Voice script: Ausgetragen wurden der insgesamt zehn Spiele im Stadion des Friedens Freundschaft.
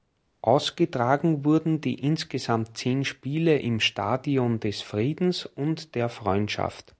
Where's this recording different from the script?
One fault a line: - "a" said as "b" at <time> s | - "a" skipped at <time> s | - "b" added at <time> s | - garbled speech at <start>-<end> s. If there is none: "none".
- "der" said as "die" at 1.8 s
- "und der" added at 5.4 s